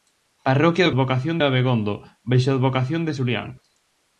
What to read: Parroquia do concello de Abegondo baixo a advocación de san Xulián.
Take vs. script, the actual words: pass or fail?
fail